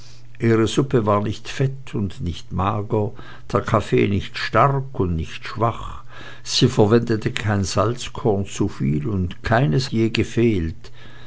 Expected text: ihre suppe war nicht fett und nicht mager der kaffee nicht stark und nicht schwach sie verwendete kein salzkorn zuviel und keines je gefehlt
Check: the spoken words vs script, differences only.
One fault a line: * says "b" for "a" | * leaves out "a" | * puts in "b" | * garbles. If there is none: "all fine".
all fine